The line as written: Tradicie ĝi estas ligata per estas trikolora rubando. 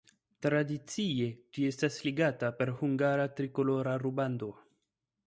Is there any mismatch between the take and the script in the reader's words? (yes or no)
yes